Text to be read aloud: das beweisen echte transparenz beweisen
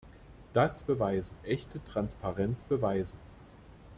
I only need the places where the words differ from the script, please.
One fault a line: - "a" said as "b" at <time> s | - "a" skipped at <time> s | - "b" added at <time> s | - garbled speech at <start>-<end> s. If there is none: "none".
none